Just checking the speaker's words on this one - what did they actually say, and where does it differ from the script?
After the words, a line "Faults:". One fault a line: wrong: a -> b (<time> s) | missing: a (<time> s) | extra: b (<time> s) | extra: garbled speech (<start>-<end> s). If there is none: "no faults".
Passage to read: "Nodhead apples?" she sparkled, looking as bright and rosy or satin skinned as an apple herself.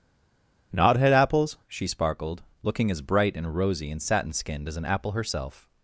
"Nodhead apples?" she sparkled, looking as bright and rosy and satin skinned as an apple herself.
Faults:
wrong: or -> and (3.9 s)